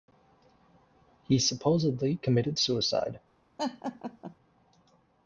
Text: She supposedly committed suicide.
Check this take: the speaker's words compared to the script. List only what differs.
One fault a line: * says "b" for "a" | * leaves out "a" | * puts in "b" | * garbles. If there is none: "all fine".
* says "He" for "She"